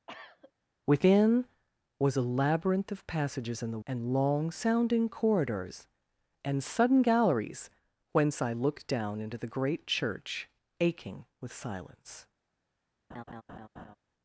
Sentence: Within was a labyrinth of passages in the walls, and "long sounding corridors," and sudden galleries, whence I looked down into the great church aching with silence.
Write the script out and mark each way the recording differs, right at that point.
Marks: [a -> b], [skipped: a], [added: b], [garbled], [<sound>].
[cough] Within was a labyrinth of passages in the [skipped: walls,] and "long sounding corridors," and sudden galleries, whence I looked down into the great church aching with silence. [laugh]